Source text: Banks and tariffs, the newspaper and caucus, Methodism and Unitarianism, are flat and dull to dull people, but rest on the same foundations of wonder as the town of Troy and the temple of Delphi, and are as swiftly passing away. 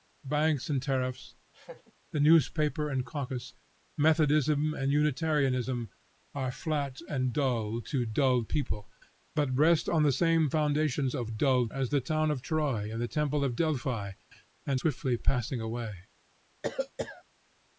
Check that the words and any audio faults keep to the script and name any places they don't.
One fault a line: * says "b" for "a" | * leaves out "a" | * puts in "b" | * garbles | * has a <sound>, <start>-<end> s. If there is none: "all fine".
* has a laugh, 1.5-1.9 s
* says "dull" for "wonder"
* leaves out "are as"
* has a cough, 16.6-17.2 s